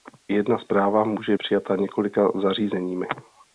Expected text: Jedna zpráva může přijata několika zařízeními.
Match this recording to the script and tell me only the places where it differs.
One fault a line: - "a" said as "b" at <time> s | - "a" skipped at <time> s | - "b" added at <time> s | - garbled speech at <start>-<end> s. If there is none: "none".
none